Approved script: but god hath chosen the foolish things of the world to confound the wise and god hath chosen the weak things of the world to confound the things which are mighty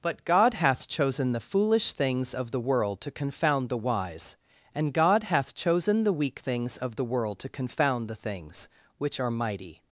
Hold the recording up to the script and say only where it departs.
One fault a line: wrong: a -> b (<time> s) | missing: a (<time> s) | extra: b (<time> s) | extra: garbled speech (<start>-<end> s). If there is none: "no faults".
no faults